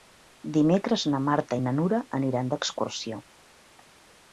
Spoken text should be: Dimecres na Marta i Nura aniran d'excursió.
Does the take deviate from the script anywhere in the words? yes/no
yes